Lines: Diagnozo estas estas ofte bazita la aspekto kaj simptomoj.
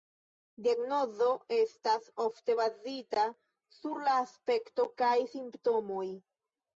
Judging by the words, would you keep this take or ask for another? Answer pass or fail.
fail